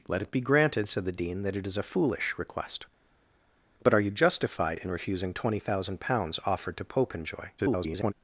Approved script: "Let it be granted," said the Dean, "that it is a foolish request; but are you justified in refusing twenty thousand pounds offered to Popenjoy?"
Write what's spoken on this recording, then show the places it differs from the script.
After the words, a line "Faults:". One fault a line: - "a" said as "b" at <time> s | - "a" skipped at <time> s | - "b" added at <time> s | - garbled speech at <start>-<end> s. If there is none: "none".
"Let it be granted," said the Dean, "that it is a foolish request; but are you justified in refusing twenty thousand pounds offered to Popenjoy?" [garbled]
Faults:
- garbled speech at 7.6-8.1 s